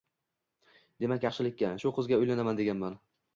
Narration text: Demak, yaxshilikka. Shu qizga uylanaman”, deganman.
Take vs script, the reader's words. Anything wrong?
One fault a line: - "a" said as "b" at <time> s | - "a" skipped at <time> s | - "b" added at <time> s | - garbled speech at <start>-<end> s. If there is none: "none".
none